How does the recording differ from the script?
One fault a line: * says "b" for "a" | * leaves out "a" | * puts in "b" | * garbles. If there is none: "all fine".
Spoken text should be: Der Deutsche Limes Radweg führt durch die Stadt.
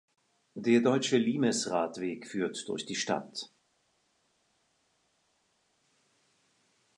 all fine